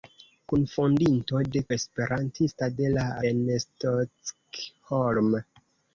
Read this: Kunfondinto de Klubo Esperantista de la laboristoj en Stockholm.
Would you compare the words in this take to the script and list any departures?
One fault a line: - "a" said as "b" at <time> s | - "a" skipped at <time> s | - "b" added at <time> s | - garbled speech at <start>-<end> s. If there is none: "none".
- "Klubo" skipped at 1.6 s
- "laboristoj" skipped at 3.0 s